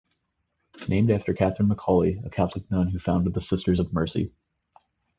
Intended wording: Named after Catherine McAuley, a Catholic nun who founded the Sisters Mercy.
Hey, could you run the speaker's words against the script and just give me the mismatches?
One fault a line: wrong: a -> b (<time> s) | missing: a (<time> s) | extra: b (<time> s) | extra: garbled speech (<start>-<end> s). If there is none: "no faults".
extra: of (3.8 s)